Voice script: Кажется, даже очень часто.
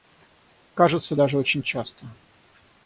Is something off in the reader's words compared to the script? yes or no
no